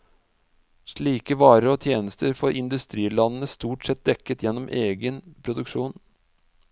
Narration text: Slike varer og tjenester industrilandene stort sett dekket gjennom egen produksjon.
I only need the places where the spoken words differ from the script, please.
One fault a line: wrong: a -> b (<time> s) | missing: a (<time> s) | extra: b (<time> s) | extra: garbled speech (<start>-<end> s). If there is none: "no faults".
extra: får (2.4 s)